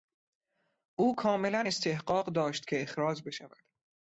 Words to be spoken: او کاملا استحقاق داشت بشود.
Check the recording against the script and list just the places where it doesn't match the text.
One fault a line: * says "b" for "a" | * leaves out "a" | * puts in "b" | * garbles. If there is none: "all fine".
* puts in "که اخراج"